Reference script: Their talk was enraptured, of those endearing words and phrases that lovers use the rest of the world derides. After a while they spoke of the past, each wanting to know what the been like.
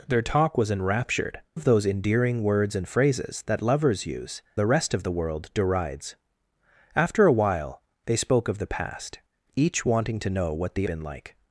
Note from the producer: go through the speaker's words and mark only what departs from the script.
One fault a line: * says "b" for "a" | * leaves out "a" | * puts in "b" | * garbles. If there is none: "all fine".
all fine